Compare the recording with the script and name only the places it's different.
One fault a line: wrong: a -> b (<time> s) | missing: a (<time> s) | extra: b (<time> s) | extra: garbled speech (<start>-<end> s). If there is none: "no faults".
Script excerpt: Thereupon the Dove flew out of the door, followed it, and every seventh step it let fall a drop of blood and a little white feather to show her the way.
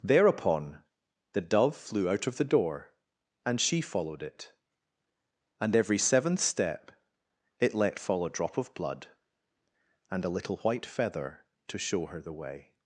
extra: and she (3.5 s)